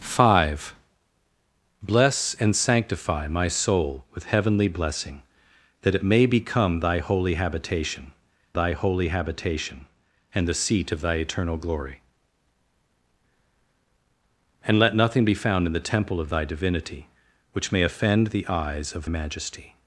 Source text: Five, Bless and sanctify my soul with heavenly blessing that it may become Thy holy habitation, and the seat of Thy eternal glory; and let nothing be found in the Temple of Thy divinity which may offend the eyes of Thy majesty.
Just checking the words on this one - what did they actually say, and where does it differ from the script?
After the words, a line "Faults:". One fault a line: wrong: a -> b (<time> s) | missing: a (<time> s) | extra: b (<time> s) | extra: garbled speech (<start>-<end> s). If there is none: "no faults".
Five, Bless and sanctify my soul with heavenly blessing that it may become Thy holy habitation Thy holy habitation, and the seat of Thy eternal glory; and let nothing be found in the Temple of Thy divinity which may offend the eyes of Majesty.
Faults:
extra: Thy holy habitation (8.5 s)
missing: Thy (19.1 s)